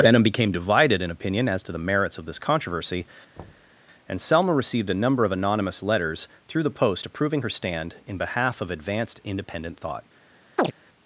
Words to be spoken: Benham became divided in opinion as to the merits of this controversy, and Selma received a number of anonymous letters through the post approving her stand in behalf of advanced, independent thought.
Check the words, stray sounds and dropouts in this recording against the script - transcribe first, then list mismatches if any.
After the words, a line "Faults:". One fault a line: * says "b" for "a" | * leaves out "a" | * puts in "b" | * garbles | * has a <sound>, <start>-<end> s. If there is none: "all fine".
Benham became divided in opinion as to the merits of this controversy, and Selma received a number of anonymous letters through the post approving her stand in behalf of advanced, independent thought.
Faults:
* has a thud, 3.4-3.7 s
* has a chirp, 10.6-10.7 s